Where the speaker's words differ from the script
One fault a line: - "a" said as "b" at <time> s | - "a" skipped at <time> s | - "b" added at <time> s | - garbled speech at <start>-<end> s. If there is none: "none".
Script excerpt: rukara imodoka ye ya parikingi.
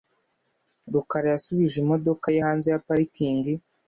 - "yasubije" added at 1.3 s
- "hanze" added at 2.4 s